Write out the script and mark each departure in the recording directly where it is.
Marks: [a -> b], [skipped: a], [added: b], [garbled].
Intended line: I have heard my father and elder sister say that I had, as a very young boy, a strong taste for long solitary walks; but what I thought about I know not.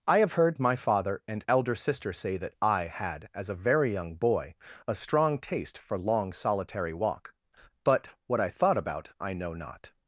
I have heard my father and elder sister say that I had, as a very young boy, a strong taste for long solitary [walks; -> walk] but what I thought about I know not.